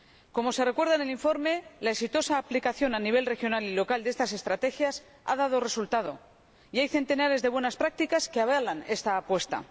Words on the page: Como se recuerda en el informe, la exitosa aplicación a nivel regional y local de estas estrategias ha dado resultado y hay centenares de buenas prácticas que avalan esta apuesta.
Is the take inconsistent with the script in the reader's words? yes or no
no